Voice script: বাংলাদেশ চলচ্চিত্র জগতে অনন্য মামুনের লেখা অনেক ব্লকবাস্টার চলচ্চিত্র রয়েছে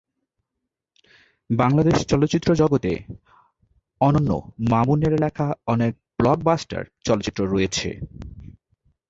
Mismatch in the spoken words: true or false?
false